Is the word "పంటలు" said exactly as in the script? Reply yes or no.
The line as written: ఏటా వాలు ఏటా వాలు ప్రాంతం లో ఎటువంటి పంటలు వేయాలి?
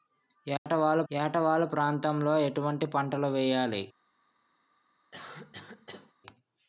yes